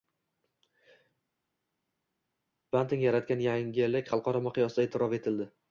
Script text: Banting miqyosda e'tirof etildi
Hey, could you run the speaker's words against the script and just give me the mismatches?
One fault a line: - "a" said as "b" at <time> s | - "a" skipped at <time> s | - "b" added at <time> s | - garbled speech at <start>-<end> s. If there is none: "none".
- "yaratgan yangilik xalqaro" added at 3.1 s